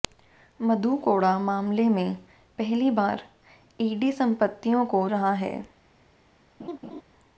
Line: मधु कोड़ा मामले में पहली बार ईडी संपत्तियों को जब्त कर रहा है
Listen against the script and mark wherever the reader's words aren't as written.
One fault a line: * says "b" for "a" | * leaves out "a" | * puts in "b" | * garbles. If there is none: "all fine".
* leaves out "जब्त कर"